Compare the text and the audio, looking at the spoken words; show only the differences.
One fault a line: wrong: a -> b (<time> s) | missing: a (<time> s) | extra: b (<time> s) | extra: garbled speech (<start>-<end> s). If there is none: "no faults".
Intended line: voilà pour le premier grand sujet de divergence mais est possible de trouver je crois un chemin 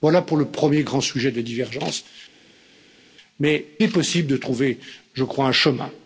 no faults